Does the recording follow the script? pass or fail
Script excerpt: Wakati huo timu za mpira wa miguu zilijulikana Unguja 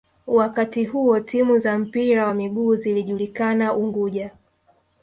pass